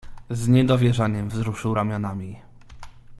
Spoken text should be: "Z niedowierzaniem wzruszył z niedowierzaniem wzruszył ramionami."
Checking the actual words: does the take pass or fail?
fail